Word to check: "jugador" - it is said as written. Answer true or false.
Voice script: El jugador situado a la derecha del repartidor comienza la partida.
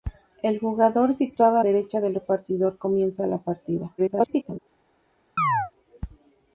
true